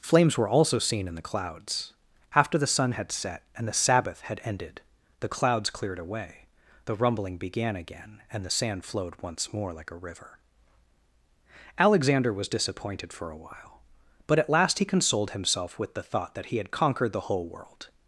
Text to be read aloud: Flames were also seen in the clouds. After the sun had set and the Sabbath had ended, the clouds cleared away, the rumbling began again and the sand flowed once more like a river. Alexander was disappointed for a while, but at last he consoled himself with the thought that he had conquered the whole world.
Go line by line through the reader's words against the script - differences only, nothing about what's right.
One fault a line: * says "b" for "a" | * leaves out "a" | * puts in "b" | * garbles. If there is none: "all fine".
all fine